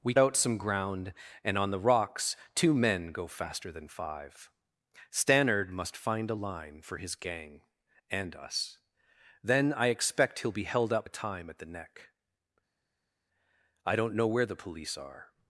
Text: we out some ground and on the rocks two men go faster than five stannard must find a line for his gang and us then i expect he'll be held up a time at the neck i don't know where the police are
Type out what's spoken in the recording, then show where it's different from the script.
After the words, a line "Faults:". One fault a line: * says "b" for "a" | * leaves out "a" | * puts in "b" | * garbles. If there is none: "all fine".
we out some ground and on the rocks two men go faster than five stannard must find a line for his gang and us then i expect he'll be held up a time at the neck i don't know where the police are
Faults:
all fine